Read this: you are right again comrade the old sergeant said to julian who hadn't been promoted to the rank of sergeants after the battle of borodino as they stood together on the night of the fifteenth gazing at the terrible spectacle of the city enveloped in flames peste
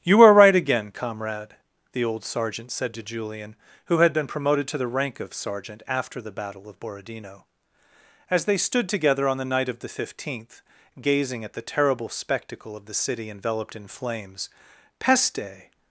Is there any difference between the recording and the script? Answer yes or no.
yes